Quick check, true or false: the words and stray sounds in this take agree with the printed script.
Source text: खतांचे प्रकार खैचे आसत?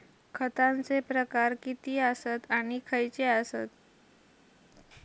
false